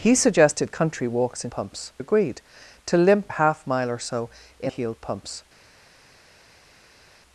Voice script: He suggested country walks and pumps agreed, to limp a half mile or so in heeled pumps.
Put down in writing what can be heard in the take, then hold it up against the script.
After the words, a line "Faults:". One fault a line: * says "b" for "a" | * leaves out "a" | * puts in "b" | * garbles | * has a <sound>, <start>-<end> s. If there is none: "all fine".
He suggested country walks and pumps agreed, to limp a half mile or so in heeled pumps.
Faults:
all fine